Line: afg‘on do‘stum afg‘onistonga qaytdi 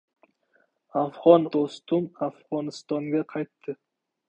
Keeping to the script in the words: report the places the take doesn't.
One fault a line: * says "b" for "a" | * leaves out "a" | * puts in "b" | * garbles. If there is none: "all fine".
all fine